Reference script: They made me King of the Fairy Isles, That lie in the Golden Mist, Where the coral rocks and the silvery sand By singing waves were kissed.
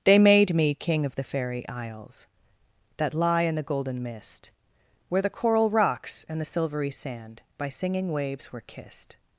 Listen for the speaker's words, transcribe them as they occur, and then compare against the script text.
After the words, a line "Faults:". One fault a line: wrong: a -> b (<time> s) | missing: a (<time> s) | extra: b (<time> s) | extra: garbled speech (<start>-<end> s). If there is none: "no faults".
They made me King of the Fairy Isles, That lie in the Golden Mist, Where the coral rocks and the silvery sand By singing waves were kissed.
Faults:
no faults